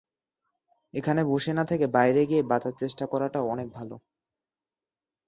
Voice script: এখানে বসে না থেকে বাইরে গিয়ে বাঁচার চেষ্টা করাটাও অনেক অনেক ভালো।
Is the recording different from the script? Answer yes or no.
yes